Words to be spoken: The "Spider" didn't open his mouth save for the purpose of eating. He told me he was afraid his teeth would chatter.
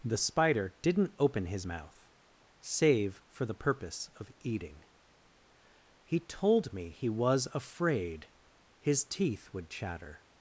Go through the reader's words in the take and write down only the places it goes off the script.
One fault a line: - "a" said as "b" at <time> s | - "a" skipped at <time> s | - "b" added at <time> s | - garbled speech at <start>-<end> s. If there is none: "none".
none